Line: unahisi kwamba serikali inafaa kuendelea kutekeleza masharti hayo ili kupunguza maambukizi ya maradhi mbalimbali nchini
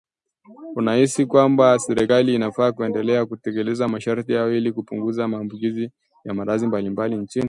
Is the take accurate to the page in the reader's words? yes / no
yes